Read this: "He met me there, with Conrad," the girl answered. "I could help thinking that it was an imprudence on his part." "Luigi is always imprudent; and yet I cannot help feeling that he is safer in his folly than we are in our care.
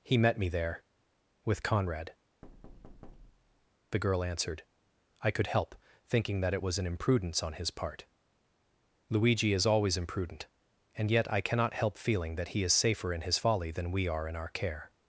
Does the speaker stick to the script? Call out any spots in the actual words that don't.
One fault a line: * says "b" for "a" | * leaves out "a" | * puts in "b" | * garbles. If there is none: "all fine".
all fine